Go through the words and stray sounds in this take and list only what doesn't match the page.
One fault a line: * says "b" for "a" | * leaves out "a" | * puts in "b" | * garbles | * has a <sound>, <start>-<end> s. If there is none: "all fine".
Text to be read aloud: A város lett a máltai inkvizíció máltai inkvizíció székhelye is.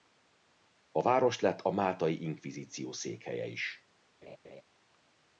* leaves out "máltai inkvizíció"
* has a laugh, 4.2-4.6 s